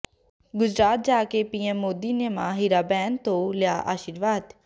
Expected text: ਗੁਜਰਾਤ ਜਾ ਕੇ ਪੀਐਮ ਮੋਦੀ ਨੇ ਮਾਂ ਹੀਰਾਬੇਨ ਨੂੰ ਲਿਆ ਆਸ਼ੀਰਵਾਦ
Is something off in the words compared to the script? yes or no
yes